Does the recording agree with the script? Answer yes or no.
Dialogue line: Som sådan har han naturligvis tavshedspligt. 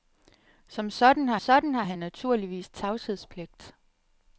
no